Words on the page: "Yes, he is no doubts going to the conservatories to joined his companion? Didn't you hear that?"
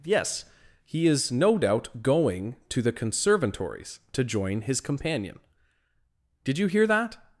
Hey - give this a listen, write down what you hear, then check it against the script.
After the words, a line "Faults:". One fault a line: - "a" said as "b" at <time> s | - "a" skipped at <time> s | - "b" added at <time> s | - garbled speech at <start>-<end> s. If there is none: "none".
"Yes, he is no doubt going to the conservatories to join his companion? Did you hear that?"
Faults:
- "doubts" said as "doubt" at 1.6 s
- "joined" said as "join" at 4.2 s
- "Didn't" said as "Did" at 6.4 s